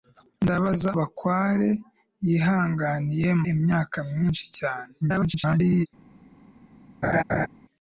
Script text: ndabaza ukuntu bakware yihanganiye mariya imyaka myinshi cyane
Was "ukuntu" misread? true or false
true